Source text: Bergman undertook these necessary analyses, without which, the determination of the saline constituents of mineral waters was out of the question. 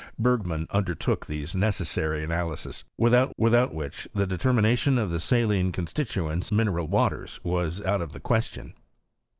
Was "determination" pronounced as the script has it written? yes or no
yes